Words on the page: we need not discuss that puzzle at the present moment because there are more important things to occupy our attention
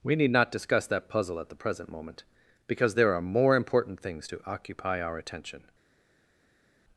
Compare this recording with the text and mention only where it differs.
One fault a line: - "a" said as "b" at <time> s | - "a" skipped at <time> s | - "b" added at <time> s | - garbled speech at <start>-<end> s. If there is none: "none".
none